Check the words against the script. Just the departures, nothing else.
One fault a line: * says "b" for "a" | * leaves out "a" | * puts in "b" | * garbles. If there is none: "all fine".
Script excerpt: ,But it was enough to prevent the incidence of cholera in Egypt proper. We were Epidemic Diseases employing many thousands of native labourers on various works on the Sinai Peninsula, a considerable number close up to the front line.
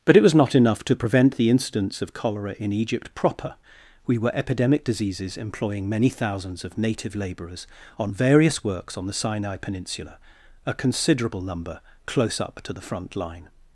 * puts in "not"